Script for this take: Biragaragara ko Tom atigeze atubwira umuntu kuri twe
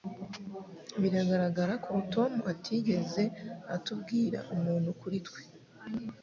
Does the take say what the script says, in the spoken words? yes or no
yes